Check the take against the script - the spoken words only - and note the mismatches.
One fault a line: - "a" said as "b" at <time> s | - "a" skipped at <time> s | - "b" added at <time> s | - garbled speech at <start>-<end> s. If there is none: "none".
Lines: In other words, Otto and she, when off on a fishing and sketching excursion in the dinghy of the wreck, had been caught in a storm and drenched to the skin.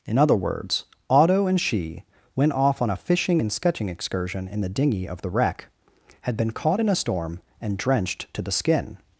- "when" said as "went" at 2.4 s